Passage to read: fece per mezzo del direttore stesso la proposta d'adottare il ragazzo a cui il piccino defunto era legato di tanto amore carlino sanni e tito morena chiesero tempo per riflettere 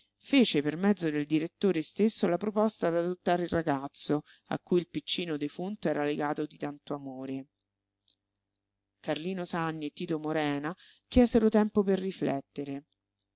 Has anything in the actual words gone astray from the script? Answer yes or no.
no